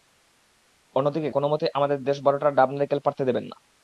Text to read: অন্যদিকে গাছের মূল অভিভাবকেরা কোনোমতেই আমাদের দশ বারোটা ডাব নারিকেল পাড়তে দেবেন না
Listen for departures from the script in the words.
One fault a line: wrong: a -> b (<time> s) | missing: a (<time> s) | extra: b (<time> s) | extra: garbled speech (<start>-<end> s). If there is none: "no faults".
missing: গাছের মূল অভিভাবকেরা (1.3 s)